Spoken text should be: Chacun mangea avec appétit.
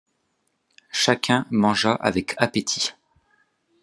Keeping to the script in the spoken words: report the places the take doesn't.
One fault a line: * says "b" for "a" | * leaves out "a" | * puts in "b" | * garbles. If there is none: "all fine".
all fine